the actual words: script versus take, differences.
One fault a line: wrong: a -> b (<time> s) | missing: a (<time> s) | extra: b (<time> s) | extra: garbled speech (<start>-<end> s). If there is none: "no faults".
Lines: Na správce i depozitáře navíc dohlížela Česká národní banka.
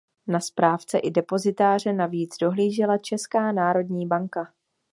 no faults